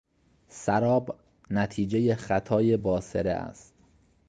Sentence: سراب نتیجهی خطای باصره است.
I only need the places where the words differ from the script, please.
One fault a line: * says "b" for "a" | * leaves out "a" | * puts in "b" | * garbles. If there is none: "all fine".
all fine